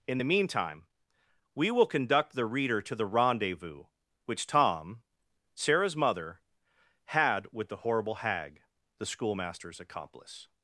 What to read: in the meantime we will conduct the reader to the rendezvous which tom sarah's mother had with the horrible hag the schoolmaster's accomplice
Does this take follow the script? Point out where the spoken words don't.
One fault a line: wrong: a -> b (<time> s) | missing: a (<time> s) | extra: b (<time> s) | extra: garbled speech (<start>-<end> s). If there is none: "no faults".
no faults